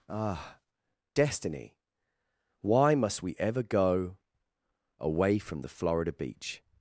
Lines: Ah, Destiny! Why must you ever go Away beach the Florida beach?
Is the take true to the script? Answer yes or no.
no